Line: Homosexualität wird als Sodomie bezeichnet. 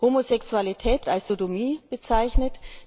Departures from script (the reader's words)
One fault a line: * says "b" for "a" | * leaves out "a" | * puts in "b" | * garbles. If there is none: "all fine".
* leaves out "wird"